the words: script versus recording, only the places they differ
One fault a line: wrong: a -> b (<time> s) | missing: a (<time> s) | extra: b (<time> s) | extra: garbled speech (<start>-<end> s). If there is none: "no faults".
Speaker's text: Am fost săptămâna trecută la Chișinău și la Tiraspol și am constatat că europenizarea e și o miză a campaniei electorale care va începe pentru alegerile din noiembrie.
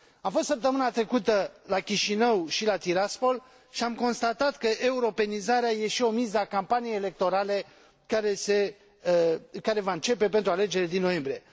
no faults